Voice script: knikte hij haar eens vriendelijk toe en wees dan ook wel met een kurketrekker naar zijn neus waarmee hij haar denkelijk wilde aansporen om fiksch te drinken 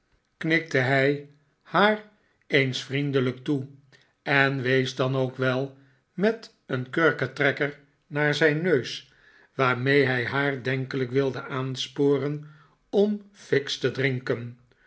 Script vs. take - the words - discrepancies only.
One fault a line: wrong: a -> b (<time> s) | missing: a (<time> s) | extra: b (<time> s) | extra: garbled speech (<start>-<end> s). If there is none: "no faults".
no faults